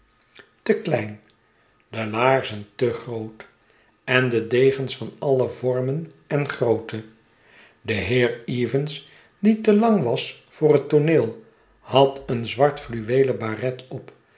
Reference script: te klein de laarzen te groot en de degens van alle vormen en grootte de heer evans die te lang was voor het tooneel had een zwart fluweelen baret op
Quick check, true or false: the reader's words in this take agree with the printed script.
true